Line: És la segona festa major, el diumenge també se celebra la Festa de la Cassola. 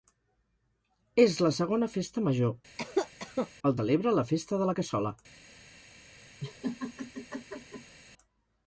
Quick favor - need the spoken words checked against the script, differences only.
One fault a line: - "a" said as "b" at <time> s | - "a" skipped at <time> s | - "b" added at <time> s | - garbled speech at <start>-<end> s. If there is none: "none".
- "diumenge també se" skipped at 3.8 s